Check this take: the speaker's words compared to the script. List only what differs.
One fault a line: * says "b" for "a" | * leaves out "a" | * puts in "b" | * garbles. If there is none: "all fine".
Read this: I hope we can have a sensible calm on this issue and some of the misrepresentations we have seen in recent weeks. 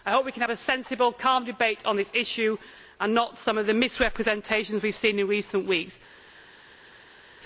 * puts in "debate"
* puts in "not"